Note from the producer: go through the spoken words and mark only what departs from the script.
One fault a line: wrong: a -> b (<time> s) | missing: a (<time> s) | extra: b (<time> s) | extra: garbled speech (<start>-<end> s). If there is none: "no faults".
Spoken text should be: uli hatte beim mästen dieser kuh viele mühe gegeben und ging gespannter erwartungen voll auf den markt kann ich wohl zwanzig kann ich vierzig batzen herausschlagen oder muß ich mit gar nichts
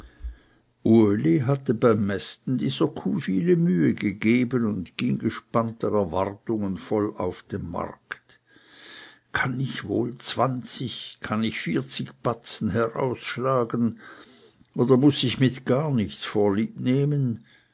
no faults